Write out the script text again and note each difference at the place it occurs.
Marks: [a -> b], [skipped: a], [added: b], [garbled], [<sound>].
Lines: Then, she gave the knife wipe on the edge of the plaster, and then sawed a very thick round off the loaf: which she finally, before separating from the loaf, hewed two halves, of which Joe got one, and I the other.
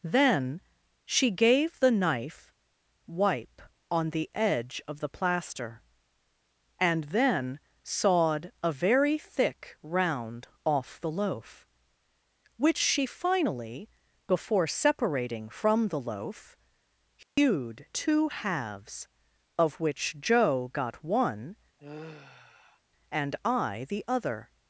Then, she gave the knife wipe on the edge of the plaster, and then sawed a very thick round off the loaf: which she finally, before separating from the loaf, hewed [dropout] two halves, of which Joe got one, [sigh] and I the other.